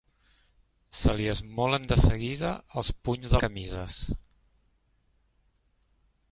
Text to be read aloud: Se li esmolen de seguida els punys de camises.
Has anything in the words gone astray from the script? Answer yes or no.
no